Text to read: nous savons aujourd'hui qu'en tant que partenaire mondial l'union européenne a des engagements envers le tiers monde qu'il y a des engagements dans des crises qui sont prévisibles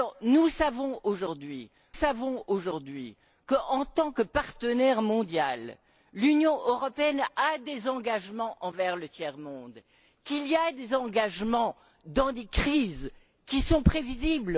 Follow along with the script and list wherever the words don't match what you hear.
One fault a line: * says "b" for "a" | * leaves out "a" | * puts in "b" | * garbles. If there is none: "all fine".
* puts in "savons aujourd'hui"